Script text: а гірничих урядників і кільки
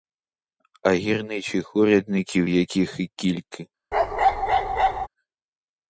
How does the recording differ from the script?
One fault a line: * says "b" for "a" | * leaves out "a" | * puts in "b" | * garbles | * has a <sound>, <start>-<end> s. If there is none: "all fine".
* puts in "яких"
* has a bark, 3.9-5.1 s